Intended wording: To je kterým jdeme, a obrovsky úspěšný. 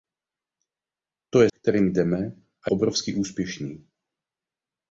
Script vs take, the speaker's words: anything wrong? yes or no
no